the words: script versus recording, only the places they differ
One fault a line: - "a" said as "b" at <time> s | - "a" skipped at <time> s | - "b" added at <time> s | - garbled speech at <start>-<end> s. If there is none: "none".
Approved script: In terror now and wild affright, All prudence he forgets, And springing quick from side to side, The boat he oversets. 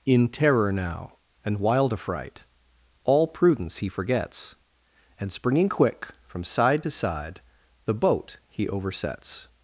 none